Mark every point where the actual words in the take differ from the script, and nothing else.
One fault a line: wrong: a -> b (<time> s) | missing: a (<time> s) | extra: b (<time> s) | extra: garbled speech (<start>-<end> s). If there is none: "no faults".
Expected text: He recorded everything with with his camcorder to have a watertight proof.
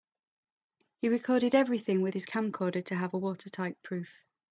missing: with (2.1 s)